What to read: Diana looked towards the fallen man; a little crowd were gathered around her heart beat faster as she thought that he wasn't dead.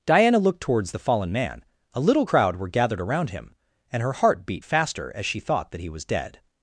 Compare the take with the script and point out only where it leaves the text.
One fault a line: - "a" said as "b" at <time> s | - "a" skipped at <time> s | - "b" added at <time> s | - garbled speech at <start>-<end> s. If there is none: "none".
- "him and" added at 3.3 s
- "wasn't" said as "was" at 5.9 s